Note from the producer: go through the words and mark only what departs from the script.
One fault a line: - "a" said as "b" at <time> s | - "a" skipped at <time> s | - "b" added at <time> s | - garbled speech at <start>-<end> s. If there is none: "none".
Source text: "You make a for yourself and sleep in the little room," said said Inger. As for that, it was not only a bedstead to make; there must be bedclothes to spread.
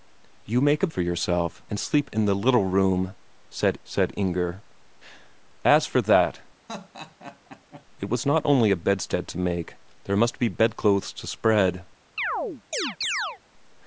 none